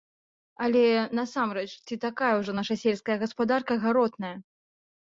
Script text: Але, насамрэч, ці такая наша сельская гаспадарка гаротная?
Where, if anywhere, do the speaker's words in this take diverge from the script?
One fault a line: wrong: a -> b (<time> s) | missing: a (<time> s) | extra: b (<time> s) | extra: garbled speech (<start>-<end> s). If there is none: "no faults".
extra: ўжо (2.4 s)